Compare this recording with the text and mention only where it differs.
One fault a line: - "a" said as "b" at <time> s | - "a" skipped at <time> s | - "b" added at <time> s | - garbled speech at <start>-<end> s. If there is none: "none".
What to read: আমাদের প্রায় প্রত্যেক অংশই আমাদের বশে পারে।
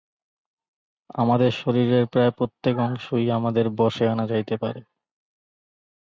- "শরীরের" added at 1.5 s
- "আনা যাইতে" added at 4.1 s